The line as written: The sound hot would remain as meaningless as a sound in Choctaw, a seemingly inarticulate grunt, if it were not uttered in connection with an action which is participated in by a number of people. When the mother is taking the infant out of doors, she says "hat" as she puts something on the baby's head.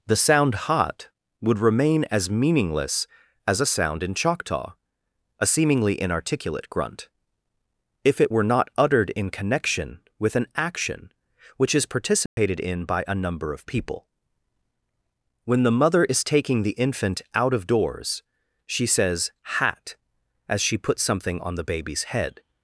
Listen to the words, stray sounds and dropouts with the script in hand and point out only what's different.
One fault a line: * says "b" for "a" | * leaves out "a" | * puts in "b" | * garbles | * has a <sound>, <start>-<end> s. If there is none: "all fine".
* has a dropout, 12.3-12.4 s